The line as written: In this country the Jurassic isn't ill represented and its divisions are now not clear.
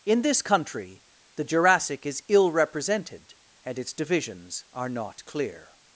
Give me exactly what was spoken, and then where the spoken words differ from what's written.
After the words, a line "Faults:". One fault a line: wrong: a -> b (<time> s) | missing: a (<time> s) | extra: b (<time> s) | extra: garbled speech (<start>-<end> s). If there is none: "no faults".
In this country the Jurassic is ill represented and its divisions are not clear.
Faults:
wrong: isn't -> is (2.1 s)
missing: now (4.9 s)